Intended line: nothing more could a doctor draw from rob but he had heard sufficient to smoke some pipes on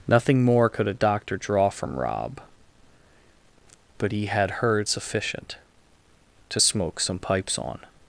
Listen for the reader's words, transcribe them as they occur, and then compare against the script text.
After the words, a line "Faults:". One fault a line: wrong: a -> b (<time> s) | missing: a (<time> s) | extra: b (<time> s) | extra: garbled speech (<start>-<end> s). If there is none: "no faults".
nothing more could a doctor draw from rob but he had heard sufficient to smoke some pipes on
Faults:
no faults